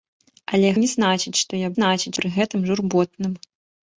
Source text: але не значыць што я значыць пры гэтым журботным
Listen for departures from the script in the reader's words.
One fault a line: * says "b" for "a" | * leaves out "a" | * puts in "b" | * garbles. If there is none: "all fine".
all fine